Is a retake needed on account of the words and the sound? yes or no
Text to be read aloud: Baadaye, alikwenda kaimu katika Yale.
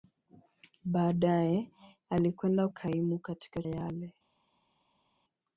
no